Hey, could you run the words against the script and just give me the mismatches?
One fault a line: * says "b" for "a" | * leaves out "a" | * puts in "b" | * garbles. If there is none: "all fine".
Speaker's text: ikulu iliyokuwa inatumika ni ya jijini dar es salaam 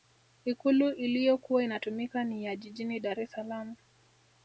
all fine